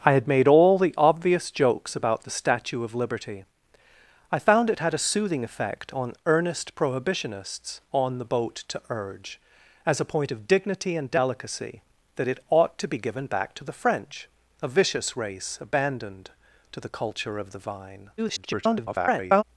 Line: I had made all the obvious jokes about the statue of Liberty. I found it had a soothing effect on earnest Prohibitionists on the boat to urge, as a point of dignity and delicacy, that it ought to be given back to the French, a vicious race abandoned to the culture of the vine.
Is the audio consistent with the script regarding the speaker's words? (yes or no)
no